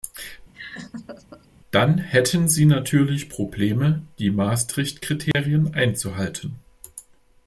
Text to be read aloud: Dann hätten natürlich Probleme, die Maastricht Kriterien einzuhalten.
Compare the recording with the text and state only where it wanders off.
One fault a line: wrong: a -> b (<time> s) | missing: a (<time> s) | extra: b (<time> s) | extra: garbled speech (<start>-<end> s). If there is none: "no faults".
extra: sie (2.5 s)